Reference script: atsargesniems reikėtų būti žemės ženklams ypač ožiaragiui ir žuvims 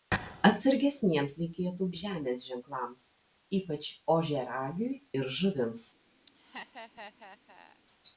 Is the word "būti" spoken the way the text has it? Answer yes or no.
no